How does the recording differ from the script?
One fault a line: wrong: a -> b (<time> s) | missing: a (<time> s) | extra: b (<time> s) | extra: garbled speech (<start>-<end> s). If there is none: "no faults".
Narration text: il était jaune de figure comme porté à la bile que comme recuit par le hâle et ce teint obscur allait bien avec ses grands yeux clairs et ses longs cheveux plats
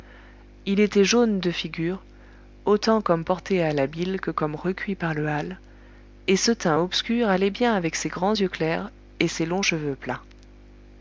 extra: autant (2.6 s)